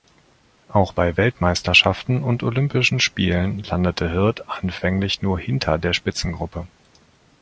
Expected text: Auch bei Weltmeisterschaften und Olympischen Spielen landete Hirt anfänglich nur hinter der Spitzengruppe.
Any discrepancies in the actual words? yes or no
no